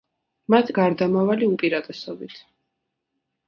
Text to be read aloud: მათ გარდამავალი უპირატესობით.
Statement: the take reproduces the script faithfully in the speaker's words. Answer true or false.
true